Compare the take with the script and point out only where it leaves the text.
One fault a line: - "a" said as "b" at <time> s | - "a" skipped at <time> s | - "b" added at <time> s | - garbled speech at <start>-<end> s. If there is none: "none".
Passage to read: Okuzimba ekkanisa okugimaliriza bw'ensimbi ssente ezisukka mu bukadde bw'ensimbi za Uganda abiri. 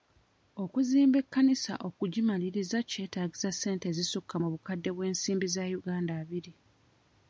- "bw'ensimbi" said as "kyetaagisa" at 2.9 s